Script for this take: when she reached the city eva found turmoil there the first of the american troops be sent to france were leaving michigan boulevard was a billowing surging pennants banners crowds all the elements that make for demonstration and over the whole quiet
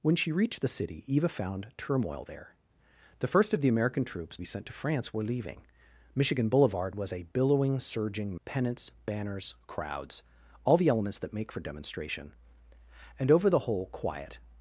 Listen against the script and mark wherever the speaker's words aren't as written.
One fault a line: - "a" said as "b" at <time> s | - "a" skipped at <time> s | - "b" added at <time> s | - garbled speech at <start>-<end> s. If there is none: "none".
none